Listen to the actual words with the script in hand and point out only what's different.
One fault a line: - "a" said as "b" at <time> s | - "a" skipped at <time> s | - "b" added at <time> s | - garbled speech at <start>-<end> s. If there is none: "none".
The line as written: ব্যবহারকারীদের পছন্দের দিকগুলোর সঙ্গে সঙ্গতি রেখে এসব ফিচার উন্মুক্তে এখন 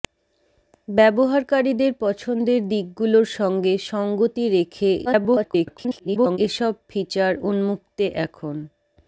- garbled speech at 5.0-6.4 s